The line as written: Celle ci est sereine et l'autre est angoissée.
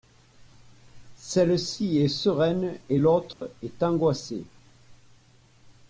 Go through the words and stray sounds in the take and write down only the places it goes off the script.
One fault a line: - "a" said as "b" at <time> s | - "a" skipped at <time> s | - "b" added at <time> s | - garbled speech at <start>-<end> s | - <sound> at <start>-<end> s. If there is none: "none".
- dropout at 3.3-3.4 s